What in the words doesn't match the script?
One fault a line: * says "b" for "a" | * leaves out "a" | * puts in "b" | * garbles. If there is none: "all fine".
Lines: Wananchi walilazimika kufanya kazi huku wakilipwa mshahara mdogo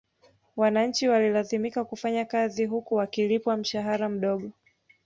all fine